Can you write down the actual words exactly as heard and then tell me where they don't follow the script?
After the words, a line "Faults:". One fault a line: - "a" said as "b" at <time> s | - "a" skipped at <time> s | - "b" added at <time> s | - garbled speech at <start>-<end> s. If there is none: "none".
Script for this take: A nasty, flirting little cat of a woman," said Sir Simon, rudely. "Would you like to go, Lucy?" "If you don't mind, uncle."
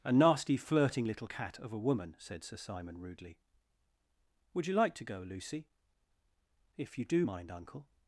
A nasty, flirting little cat of a woman," said Sir Simon, rudely. "Would you like to go, Lucy?" "If you do mind, uncle."
Faults:
- "don't" said as "do" at 7.0 s